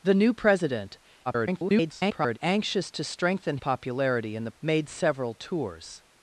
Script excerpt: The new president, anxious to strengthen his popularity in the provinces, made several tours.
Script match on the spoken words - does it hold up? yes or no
no